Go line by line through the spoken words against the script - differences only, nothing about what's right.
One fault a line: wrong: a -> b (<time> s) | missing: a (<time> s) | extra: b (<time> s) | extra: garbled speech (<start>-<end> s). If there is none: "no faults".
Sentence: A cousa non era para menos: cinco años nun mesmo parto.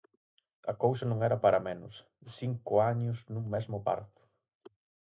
no faults